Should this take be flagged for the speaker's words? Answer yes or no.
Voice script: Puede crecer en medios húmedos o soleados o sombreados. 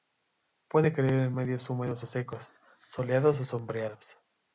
yes